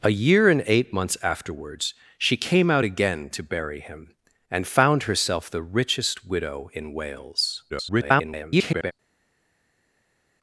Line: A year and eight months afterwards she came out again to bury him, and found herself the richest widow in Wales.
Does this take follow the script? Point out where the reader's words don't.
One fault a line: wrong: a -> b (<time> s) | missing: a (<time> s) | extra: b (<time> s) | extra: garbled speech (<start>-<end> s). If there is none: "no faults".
extra: garbled speech (7.7-8.9 s)